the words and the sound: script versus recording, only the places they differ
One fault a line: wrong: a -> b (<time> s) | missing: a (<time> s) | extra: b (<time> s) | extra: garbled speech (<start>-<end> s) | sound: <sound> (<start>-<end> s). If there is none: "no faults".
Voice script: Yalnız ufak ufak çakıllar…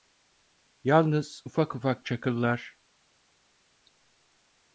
no faults